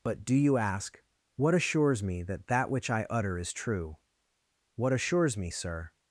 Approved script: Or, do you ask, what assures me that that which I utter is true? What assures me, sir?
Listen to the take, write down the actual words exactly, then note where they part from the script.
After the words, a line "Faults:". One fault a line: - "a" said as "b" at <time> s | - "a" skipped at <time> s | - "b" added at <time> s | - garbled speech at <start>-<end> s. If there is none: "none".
But, do you ask, what assures me that that which I utter is true? What assures me, sir?
Faults:
- "Or" said as "But" at 0.0 s